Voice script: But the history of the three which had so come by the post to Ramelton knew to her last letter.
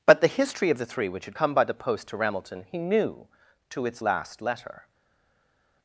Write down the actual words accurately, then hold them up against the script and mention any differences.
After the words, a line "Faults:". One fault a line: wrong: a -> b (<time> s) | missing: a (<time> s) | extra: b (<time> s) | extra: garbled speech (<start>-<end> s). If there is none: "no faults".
But the history of the three which had come by the post to Ramelton he knew to its last letter.
Faults:
missing: so (1.4 s)
extra: he (2.7 s)
wrong: her -> its (3.9 s)